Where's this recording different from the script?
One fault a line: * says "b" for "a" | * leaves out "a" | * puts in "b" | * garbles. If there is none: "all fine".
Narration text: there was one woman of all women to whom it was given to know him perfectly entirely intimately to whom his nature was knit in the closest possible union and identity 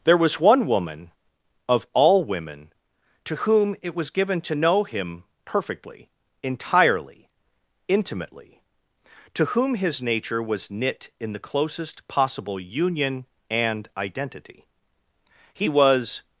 * puts in "he was"